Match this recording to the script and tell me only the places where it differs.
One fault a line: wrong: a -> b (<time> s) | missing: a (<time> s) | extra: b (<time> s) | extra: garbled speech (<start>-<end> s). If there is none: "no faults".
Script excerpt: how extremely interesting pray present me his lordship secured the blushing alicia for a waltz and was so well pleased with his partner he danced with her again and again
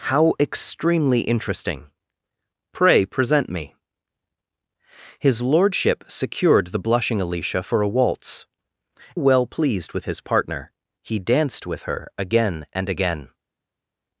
missing: and was so (8.5 s)